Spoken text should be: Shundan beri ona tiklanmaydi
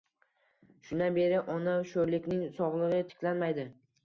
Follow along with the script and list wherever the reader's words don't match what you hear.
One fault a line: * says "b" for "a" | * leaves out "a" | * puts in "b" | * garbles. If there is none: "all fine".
* puts in "sho`rlikning sog`ligi"